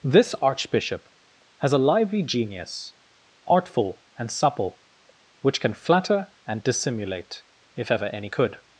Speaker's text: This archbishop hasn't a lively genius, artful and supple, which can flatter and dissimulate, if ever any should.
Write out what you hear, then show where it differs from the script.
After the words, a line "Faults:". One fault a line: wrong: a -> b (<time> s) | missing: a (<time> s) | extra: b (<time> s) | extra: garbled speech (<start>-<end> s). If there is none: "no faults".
This archbishop has a lively genius, artful and supple, which can flatter and dissimulate, if ever any could.
Faults:
wrong: hasn't -> has (1.6 s)
wrong: should -> could (8.3 s)